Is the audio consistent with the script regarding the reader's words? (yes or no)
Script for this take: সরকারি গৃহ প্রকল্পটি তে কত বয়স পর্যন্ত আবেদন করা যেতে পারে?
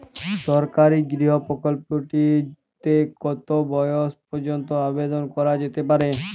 yes